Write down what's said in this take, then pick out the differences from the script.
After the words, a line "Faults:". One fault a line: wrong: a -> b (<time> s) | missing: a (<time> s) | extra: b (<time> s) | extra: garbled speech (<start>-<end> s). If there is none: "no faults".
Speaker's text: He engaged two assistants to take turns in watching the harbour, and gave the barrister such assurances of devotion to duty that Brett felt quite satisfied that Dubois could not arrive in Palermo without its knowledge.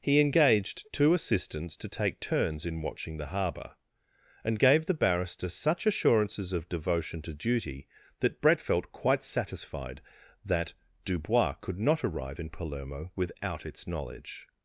He engaged two assistants to take turns in watching the harbour, and gave the barrister such assurances of devotion to duty that Brett felt quite satisfied that Dubois could not arrive in Palermo without its knowledge.
Faults:
no faults